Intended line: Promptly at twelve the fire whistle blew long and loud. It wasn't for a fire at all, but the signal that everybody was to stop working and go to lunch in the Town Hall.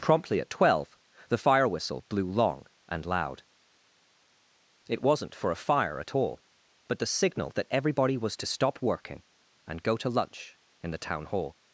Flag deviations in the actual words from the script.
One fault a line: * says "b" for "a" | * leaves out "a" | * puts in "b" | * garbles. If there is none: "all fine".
all fine